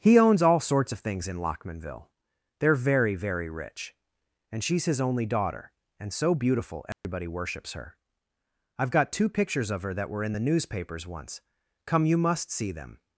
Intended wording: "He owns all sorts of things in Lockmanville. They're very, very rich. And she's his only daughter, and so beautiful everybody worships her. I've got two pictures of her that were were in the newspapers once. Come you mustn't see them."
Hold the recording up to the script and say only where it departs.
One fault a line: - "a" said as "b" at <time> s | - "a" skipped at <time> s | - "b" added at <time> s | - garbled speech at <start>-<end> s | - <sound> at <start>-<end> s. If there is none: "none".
- dropout at 6.9-7.0 s
- "were" skipped at 10.2 s
- "mustn't" said as "must" at 12.2 s